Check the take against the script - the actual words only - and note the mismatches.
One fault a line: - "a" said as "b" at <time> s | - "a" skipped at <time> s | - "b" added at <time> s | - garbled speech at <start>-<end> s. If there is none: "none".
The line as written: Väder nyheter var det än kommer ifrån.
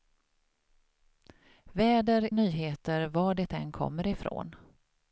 none